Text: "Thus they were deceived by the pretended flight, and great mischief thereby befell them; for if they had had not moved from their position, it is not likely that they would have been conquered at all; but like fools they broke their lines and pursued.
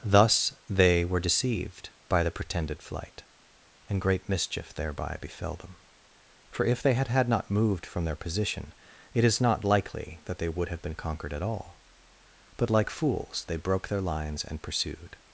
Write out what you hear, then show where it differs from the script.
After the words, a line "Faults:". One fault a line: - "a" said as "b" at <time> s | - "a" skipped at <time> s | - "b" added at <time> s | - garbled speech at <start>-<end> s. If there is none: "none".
"Thus they were deceived by the pretended flight, and great mischief thereby befell them; for if they had had not moved from their position, it is not likely that they would have been conquered at all; but like fools they broke their lines and pursued.
Faults:
none